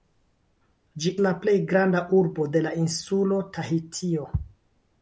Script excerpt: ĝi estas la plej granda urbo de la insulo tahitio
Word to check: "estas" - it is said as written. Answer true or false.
false